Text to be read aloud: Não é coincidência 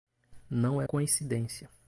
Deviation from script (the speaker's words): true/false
false